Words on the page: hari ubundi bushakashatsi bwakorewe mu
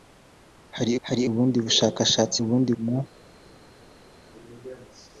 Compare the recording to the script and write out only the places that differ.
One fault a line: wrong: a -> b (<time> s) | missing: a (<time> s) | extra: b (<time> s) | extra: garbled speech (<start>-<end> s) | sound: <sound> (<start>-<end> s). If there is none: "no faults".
extra: hari (1.1 s)
wrong: bwakorewe -> ubundi (2.4 s)